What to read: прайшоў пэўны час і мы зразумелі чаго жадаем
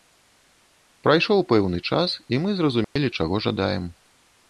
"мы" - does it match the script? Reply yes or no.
yes